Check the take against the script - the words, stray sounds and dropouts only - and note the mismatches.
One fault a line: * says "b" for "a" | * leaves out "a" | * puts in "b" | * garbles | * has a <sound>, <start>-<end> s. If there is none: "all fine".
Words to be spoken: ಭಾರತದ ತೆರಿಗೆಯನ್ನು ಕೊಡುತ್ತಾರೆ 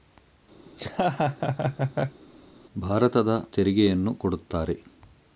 * has a laugh, 0.7-2.2 s